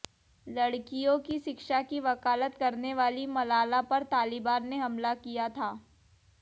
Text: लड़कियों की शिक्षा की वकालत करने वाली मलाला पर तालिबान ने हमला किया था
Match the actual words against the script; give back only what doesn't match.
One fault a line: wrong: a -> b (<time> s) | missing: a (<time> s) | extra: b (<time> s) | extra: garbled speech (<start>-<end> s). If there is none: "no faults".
no faults